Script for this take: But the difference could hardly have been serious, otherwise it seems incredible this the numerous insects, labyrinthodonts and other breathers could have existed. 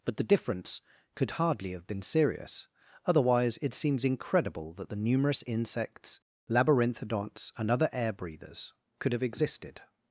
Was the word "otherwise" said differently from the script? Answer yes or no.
no